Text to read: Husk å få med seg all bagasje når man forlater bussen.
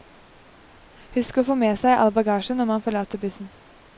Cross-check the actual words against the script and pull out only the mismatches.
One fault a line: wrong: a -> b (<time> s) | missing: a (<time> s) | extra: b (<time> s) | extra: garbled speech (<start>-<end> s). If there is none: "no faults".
no faults